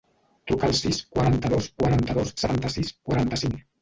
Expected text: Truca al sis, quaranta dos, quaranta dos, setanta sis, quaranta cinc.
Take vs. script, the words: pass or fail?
pass